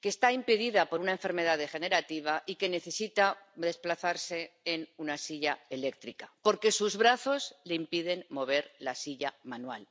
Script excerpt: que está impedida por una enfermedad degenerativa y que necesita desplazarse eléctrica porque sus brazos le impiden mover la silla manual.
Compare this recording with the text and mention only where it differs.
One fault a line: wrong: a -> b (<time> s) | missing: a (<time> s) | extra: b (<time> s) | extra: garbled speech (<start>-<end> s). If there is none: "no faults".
extra: en una silla (4.6 s)